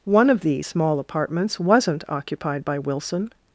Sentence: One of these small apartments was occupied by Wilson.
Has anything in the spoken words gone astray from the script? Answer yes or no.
yes